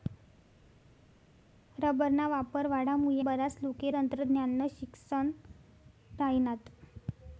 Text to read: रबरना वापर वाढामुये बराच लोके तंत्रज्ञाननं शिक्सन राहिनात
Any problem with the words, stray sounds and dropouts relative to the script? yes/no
no